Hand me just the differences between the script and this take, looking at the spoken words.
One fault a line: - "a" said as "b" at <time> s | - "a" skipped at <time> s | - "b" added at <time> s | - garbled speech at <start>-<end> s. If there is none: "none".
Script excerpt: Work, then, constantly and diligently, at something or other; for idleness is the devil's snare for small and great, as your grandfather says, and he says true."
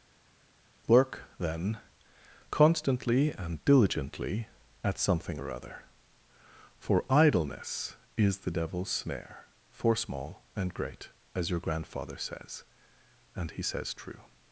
none